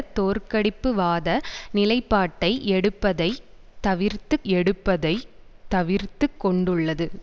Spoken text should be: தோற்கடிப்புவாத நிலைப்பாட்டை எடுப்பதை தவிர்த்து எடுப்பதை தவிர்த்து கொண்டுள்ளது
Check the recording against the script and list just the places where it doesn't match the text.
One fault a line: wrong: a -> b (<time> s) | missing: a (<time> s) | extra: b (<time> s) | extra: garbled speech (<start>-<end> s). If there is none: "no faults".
no faults